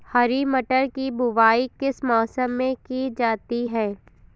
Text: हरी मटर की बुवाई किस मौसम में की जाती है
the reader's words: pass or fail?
pass